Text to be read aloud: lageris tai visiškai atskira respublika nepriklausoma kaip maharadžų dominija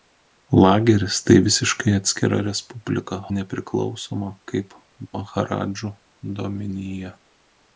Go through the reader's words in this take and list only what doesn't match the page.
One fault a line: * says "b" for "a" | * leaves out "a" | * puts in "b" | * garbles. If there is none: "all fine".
all fine